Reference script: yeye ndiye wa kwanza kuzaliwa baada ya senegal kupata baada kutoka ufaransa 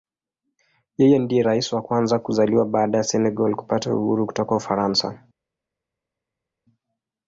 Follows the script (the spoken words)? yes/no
no